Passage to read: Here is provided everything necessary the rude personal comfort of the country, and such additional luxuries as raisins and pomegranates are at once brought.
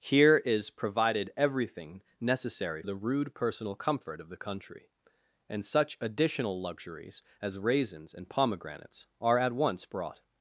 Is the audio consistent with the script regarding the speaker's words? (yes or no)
yes